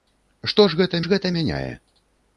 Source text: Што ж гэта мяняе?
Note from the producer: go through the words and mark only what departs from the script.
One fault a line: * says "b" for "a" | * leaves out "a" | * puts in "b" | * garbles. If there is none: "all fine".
* puts in "ж гэта"